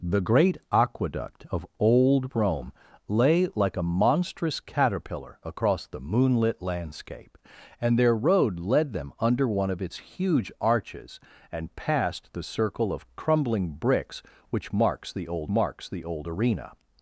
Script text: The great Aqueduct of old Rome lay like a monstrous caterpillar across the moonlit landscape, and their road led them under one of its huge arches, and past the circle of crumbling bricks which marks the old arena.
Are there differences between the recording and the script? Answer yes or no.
yes